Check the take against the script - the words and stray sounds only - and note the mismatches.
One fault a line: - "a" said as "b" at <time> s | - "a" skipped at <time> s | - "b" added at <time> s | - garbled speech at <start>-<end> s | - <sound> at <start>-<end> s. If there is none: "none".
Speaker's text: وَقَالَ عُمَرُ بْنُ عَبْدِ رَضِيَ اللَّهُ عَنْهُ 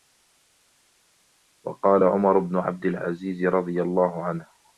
- "الْعَزِيزِ" added at 2.9 s